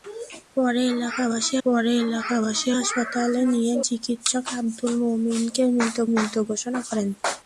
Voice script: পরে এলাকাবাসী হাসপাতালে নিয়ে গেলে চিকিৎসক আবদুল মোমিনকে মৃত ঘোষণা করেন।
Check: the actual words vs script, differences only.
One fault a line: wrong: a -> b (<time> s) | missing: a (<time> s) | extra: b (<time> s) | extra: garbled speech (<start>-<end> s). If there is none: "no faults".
extra: পরে এলাকাবাসী (1.6 s)
missing: গেলে (3.7 s)
extra: মৃত (6.1 s)